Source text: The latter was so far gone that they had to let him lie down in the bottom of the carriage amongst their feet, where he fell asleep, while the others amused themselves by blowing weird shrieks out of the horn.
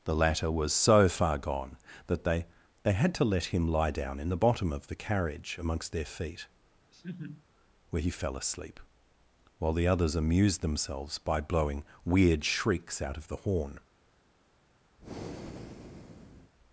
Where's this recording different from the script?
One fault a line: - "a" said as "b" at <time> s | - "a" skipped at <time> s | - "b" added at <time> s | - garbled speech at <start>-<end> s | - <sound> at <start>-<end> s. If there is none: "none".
- "they" added at 2.8 s
- laugh at 6.9-7.5 s
- breath at 15.0-16.5 s